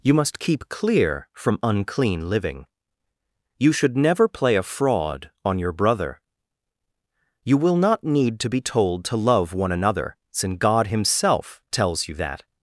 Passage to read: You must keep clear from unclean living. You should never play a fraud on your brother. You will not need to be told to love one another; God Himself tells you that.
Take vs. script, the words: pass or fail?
fail